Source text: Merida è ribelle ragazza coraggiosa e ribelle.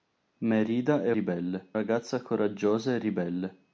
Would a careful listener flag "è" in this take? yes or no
no